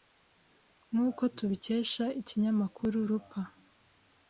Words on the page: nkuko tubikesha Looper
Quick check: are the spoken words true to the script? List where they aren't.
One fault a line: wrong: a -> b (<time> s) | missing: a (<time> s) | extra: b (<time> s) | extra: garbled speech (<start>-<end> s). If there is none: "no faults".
extra: ikinyamakuru (2.2 s)